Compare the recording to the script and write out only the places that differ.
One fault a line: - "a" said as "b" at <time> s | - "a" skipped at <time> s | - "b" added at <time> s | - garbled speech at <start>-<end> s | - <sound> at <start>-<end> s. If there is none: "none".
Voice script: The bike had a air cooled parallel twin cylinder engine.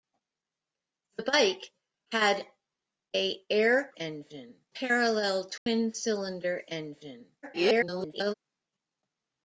- "cooled" said as "engine" at 3.9 s
- dropout at 5.6-5.7 s
- garbled speech at 7.4-8.3 s